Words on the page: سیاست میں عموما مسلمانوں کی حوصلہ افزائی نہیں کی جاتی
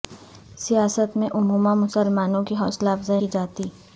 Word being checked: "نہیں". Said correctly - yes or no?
no